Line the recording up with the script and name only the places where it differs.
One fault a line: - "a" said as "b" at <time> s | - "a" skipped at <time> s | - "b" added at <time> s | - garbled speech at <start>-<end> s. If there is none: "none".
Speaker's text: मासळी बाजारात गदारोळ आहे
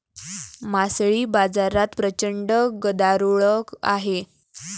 - "प्रचंड" added at 2.0 s